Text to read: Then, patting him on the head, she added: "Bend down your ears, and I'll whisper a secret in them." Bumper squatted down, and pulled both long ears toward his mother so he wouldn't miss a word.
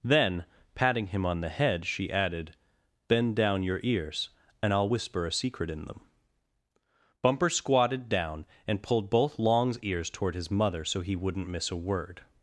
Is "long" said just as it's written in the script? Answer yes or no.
no